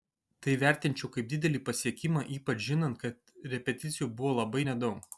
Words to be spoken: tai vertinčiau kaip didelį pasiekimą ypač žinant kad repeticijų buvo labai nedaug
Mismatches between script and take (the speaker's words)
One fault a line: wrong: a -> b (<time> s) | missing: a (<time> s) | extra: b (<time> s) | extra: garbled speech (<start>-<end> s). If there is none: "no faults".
no faults